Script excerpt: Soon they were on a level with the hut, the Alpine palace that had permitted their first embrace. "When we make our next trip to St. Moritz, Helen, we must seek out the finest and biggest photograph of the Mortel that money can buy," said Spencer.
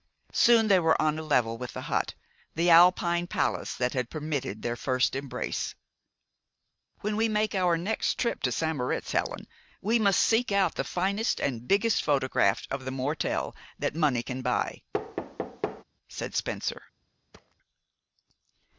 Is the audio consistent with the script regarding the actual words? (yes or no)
yes